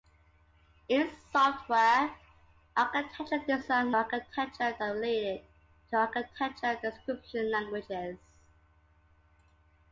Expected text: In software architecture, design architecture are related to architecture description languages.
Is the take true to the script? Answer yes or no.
yes